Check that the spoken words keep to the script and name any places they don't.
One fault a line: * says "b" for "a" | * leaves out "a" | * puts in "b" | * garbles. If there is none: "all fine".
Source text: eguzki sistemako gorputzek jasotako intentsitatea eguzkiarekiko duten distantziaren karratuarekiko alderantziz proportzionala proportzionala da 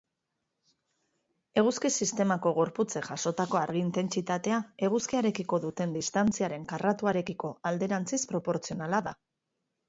* puts in "argi"
* leaves out "proportzionala"